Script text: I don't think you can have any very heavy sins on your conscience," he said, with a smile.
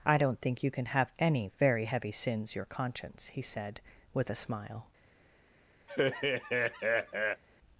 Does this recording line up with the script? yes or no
no